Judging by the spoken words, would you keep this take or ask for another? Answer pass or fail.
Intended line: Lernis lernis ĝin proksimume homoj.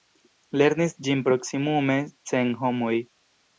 fail